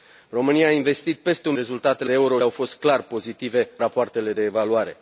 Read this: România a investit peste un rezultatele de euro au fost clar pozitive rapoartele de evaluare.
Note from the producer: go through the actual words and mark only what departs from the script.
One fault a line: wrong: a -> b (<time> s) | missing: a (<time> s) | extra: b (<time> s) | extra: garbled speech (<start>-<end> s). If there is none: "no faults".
no faults